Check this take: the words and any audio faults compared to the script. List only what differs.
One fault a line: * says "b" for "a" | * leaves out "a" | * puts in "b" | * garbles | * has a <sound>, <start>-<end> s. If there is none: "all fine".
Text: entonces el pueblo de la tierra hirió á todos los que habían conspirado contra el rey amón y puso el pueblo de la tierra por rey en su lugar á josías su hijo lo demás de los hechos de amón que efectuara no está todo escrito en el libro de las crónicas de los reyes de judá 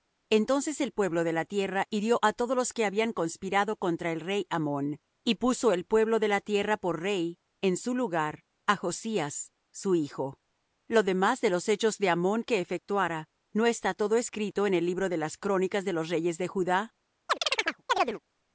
* has a chirp, 17.3-18.2 s